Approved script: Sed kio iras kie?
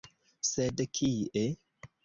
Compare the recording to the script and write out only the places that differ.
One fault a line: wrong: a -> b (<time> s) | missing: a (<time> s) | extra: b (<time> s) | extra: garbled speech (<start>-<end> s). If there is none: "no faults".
missing: kio iras (0.8 s)